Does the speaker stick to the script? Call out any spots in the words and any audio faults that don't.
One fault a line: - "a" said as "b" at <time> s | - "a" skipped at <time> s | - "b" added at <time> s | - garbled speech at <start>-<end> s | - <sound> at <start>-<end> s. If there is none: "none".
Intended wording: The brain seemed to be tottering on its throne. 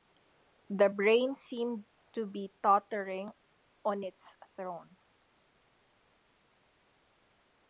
none